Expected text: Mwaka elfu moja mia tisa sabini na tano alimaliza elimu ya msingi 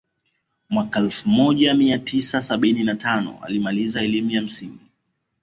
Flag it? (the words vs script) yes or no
no